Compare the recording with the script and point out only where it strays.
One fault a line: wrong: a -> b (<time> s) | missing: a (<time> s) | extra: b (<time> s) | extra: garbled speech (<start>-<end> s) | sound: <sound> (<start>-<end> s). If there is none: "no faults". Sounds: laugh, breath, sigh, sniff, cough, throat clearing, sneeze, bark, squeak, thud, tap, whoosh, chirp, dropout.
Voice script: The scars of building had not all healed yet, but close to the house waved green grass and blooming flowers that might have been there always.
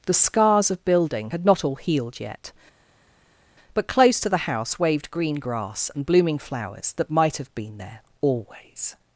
no faults